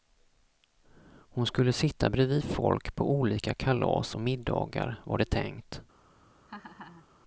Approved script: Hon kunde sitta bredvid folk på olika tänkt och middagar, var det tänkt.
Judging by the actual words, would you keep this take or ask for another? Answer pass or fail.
fail